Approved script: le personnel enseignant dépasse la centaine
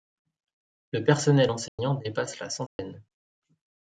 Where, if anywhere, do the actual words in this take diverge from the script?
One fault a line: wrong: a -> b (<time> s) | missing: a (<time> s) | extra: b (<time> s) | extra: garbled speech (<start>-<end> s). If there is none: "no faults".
no faults